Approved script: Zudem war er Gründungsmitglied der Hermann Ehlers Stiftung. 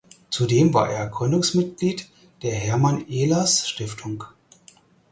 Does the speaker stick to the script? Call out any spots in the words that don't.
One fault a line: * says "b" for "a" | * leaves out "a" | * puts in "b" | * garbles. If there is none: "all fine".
all fine